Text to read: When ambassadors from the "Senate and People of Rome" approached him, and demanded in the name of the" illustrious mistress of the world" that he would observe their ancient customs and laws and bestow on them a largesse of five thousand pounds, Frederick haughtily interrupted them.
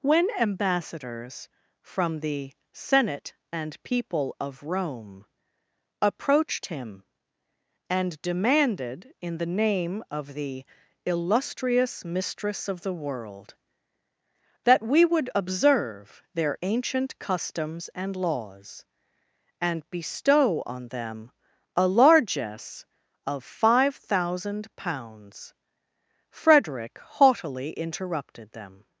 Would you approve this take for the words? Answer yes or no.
no